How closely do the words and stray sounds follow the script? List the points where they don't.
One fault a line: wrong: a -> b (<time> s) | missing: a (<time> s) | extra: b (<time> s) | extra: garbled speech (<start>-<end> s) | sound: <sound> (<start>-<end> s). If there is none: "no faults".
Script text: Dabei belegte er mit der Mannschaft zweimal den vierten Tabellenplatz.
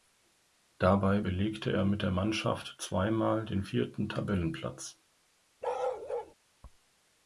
sound: bark (5.6-6.3 s)